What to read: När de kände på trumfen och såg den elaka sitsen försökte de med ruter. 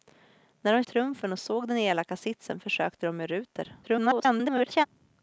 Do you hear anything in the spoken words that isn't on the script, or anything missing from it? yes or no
yes